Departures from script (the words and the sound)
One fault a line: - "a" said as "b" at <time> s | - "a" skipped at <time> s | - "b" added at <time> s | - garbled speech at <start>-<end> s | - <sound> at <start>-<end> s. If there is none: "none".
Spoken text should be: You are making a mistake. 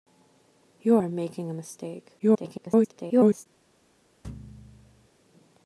- garbled speech at 2.2-3.5 s
- thud at 4.2-5.1 s